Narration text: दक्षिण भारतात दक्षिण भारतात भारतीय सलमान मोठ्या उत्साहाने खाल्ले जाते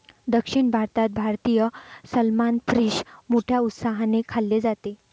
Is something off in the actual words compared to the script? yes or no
yes